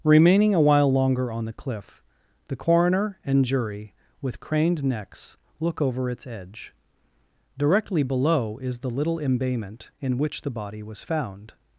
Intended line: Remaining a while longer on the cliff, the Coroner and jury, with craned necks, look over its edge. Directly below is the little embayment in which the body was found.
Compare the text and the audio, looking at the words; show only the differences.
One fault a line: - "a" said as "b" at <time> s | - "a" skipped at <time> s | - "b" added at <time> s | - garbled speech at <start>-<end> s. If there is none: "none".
none